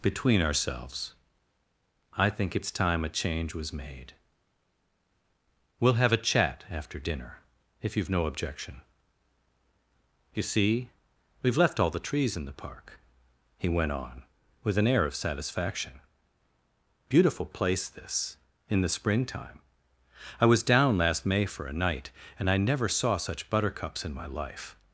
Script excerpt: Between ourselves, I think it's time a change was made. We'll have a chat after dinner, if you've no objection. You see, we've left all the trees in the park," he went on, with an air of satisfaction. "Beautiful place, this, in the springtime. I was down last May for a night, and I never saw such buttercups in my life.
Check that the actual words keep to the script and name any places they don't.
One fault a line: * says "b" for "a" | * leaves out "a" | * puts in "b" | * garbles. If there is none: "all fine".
all fine